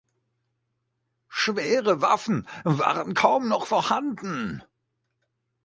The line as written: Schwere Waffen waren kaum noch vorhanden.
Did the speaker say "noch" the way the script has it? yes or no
yes